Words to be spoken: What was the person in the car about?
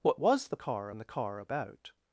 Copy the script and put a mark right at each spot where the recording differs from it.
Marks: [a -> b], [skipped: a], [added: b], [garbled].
What was the [person -> car] in the car about?